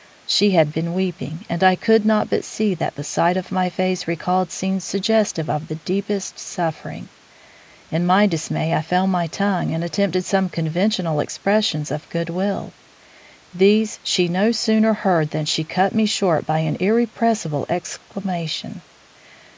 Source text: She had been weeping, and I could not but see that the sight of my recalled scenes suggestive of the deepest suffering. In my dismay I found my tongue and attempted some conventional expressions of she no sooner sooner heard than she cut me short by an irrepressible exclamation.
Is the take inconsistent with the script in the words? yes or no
yes